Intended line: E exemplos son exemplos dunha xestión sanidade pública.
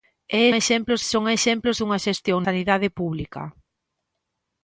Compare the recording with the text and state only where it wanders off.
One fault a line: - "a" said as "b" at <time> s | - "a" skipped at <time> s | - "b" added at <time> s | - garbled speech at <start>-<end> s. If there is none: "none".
none